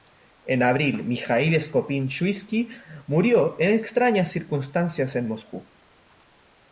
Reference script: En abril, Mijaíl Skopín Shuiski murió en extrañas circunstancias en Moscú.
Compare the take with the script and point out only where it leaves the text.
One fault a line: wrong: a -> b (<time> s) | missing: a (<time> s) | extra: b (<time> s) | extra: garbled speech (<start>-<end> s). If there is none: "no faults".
no faults